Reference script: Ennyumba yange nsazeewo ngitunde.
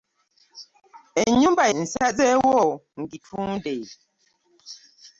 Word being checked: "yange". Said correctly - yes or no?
no